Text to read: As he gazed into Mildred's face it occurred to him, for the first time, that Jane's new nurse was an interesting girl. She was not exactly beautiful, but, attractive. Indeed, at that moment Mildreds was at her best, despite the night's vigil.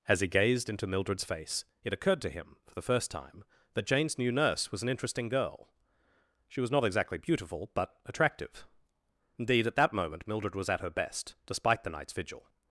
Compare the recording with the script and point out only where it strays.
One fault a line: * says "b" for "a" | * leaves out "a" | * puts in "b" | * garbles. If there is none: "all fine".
* says "Mildred" for "Mildreds"